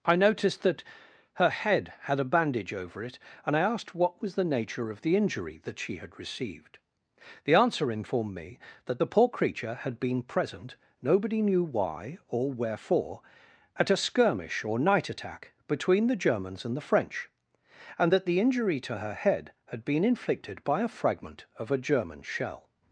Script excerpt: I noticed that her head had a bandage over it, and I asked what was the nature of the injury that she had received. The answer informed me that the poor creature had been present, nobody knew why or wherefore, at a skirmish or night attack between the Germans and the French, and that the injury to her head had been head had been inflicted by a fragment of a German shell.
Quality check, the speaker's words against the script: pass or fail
fail